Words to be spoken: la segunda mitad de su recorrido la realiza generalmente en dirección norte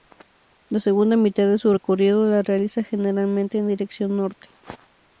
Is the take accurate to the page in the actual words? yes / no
yes